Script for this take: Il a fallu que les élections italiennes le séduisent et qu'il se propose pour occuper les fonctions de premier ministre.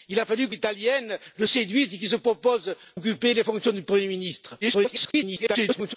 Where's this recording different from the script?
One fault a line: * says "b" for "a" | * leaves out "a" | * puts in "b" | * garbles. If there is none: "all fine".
* leaves out "les élections"
* leaves out "pour"
* garbles